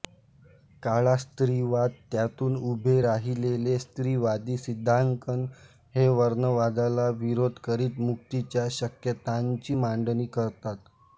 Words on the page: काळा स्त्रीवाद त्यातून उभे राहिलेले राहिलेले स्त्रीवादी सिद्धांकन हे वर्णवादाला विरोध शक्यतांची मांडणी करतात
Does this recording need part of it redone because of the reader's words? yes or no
yes